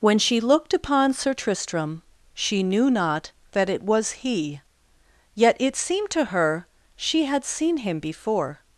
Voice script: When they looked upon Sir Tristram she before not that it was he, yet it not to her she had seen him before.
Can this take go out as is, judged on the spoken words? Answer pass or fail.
fail